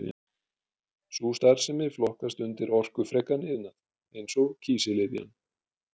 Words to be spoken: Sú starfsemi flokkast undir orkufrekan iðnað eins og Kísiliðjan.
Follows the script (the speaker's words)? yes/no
yes